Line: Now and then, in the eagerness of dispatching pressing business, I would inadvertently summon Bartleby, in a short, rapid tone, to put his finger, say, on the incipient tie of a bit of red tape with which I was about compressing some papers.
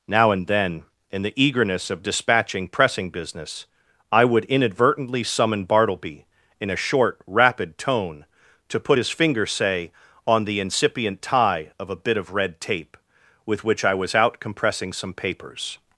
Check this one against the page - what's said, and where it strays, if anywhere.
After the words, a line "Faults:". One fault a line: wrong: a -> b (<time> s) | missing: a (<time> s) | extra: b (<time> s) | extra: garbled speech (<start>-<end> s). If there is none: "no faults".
Now and then, in the eagerness of dispatching pressing business, I would inadvertently summon Bartleby, in a short, rapid tone, to put his finger, say, on the incipient tie of a bit of red tape with which I was out compressing some papers.
Faults:
wrong: about -> out (14.1 s)